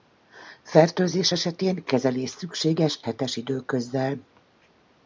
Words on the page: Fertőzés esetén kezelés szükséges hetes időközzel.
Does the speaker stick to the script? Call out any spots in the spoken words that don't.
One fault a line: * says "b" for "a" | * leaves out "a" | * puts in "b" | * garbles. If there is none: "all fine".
all fine